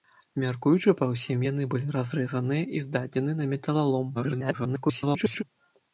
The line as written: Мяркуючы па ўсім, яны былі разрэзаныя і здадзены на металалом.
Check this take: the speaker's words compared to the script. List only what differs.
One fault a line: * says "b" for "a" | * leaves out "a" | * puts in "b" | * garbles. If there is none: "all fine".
* garbles